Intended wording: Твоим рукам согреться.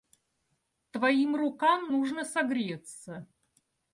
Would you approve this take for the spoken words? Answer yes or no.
no